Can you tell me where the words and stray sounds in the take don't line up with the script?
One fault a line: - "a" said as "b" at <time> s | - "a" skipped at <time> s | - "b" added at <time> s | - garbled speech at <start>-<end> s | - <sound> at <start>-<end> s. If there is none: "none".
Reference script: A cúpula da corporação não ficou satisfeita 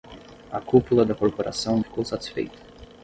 - "não" skipped at 1.8 s